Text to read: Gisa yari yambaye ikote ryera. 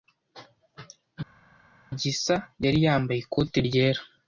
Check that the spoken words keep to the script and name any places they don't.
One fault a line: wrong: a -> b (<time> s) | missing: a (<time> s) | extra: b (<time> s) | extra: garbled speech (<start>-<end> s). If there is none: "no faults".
no faults